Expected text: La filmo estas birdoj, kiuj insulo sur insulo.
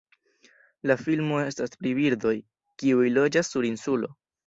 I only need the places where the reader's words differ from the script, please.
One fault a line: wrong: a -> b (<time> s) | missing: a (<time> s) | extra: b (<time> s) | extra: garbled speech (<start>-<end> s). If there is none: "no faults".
extra: pri (1.8 s)
wrong: insulo -> loĝas (3.2 s)